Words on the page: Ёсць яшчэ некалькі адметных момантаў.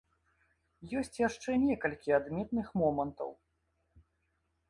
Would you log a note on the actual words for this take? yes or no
no